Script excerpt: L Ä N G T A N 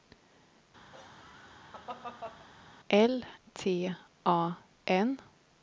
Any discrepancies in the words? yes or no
yes